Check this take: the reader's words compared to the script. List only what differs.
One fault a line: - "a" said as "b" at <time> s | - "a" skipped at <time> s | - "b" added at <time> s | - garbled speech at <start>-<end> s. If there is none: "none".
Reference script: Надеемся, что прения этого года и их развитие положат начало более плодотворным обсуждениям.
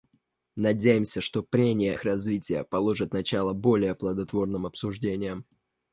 - "этого года и" skipped at 1.9 s